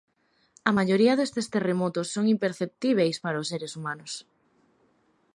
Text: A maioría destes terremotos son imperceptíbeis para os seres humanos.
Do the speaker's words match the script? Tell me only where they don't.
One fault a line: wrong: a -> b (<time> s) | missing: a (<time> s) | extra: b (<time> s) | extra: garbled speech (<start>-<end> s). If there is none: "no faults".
no faults